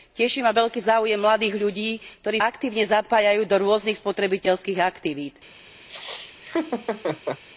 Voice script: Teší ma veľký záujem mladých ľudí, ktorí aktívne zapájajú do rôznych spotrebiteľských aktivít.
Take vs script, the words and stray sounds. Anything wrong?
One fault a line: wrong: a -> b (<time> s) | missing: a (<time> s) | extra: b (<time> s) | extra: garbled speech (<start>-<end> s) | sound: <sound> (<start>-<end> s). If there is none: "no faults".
sound: laugh (5.9-7.4 s)